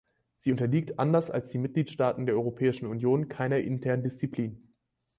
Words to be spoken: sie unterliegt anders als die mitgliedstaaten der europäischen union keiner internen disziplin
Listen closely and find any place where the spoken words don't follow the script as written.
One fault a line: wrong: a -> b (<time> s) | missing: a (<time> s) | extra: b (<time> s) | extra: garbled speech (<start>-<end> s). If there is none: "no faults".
no faults